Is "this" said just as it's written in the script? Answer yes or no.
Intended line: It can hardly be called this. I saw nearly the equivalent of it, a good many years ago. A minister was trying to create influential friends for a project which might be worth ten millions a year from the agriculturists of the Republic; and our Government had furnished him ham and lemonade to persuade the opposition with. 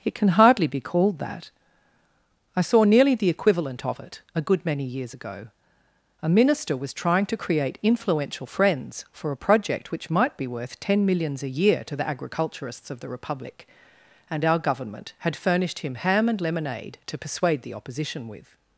no